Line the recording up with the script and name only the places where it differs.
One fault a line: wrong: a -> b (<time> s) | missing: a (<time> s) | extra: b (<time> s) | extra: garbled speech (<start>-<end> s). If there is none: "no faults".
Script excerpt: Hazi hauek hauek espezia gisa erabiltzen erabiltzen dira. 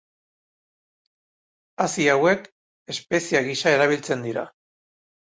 missing: hauek (2.5 s)
missing: erabiltzen (4.3 s)